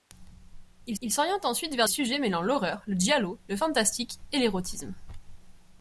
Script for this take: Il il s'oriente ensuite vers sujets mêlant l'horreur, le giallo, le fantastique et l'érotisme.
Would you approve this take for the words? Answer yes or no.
yes